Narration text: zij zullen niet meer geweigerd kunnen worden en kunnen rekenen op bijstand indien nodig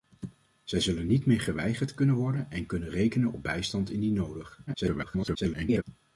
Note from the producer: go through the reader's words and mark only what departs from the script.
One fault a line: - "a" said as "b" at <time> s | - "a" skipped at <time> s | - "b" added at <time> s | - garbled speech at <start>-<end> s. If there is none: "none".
- garbled speech at 4.7-5.8 s